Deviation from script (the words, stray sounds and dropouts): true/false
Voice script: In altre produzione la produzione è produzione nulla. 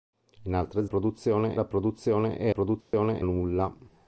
true